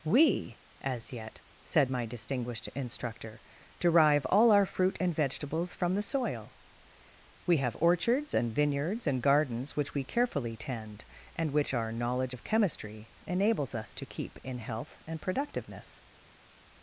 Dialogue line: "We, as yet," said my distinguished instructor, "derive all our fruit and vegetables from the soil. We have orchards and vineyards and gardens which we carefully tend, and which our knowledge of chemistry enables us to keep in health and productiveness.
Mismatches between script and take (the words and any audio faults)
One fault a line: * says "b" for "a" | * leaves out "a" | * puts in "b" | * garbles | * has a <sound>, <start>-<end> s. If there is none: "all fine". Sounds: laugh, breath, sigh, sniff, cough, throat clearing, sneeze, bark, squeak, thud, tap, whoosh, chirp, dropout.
all fine